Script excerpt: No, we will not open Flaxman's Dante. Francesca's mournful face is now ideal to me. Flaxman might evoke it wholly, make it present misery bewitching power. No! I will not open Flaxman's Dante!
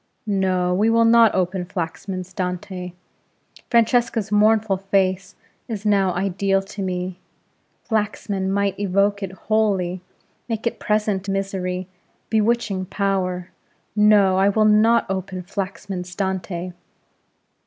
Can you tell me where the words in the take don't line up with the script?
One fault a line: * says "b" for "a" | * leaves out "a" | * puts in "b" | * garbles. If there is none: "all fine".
all fine